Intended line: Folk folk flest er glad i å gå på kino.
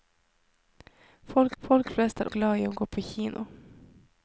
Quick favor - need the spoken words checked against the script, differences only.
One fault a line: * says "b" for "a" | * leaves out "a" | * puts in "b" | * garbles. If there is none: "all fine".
all fine